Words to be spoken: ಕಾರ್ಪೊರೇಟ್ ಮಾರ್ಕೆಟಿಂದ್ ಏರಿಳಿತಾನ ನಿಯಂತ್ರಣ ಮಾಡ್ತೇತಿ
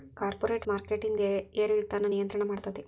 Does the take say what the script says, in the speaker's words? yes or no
yes